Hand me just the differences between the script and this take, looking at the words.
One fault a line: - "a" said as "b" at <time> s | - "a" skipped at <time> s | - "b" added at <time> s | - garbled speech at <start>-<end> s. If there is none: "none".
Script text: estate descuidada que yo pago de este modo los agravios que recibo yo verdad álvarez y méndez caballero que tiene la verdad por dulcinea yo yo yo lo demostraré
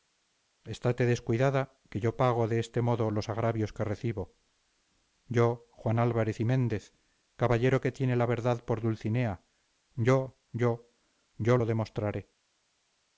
- "verdad" said as "juan" at 5.7 s